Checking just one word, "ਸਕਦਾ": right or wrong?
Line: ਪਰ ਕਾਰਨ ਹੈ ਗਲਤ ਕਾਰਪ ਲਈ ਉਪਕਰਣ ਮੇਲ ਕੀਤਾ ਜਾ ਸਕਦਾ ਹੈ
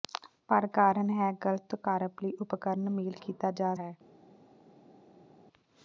wrong